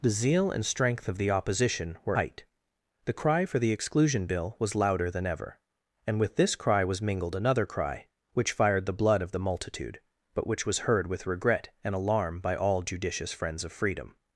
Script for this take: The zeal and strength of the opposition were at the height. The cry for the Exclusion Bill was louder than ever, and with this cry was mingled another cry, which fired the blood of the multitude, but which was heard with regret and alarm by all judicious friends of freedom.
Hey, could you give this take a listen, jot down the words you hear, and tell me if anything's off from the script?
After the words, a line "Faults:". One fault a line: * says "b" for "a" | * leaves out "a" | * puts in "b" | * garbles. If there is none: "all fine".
The zeal and strength of the opposition were height. The cry for the Exclusion Bill was louder than ever, and with this cry was mingled another cry, which fired the blood of the multitude, but which was heard with regret and alarm by all judicious friends of freedom.
Faults:
* leaves out "at the"